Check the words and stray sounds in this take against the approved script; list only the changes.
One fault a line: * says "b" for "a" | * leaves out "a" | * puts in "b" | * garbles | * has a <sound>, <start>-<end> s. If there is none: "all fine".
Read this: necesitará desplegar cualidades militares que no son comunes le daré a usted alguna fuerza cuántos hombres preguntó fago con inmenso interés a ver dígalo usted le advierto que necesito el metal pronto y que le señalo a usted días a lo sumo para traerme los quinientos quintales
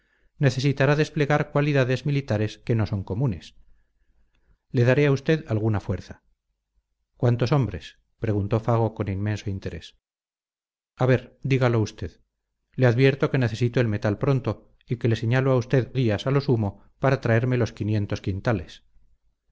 all fine